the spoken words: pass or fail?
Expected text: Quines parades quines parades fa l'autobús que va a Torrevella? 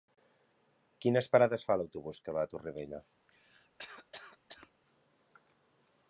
fail